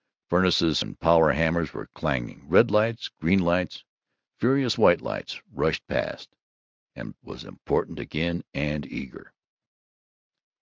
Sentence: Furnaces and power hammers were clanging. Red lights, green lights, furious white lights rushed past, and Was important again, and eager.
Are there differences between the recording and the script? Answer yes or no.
no